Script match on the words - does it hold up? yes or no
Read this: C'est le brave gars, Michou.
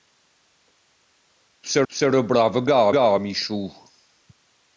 no